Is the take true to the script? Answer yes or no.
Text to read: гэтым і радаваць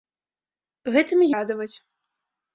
yes